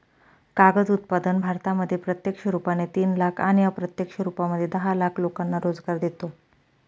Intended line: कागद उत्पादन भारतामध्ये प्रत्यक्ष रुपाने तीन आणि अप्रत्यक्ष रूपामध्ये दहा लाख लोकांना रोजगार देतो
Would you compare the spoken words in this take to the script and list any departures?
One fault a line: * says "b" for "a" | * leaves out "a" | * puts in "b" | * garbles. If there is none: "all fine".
* puts in "लाख"